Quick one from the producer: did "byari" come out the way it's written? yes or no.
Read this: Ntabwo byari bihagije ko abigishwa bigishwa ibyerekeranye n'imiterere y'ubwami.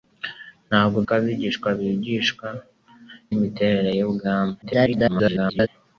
no